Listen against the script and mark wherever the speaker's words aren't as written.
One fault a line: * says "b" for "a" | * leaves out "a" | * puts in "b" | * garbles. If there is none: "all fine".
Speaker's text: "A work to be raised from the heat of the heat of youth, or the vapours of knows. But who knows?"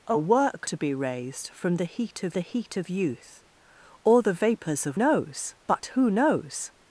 all fine